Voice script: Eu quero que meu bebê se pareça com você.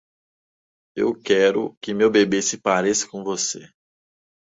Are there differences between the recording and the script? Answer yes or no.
no